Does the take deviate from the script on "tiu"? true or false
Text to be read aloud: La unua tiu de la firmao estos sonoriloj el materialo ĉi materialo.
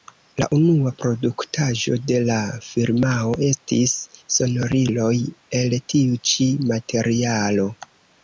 true